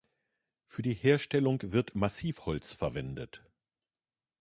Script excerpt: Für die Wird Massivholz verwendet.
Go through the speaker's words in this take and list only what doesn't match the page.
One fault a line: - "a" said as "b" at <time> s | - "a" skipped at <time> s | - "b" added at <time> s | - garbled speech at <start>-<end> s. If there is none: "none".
- "Herstellung" added at 0.9 s